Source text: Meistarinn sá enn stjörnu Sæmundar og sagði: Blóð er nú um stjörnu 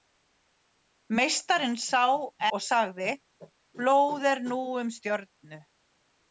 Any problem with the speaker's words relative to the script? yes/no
yes